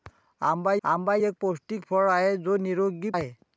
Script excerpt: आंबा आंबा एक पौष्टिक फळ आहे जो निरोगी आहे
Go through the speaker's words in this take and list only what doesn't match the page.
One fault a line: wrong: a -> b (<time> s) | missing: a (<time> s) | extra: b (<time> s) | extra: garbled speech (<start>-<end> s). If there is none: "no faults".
no faults